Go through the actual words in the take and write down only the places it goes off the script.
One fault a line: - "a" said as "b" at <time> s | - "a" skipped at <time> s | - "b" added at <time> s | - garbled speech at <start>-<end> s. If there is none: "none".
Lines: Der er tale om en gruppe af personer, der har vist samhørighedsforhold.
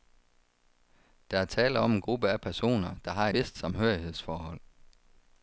none